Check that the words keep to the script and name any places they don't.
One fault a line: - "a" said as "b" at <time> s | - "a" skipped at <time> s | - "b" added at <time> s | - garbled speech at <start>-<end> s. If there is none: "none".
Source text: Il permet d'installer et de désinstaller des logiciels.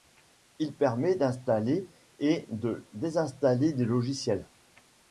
none